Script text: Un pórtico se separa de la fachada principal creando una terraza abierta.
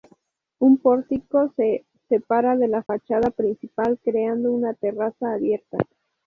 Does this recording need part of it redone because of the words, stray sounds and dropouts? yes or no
yes